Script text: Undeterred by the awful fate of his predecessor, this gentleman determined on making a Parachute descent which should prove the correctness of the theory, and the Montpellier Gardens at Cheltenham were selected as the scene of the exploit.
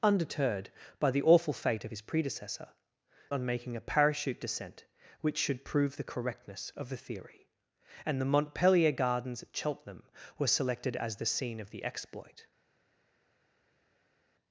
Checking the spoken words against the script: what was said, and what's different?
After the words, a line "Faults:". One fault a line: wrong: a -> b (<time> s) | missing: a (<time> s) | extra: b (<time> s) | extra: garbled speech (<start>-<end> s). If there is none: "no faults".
Undeterred by the awful fate of his predecessor, on making a Parachute descent which should prove the correctness of the theory, and the Montpellier Gardens at Cheltenham were selected as the scene of the exploit.
Faults:
missing: this gentleman determined (2.7 s)